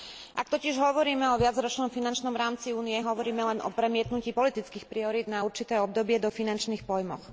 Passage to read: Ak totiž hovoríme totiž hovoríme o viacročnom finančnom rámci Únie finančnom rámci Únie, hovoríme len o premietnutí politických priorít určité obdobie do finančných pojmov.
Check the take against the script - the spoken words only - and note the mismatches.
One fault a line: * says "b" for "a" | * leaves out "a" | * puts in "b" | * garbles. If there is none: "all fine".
* leaves out "totiž hovoríme"
* leaves out "finančnom rámci Únie"
* puts in "na"